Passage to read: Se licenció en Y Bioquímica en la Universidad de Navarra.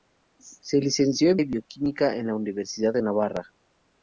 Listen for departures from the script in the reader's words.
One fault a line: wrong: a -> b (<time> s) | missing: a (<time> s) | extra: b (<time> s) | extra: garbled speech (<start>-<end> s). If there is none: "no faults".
no faults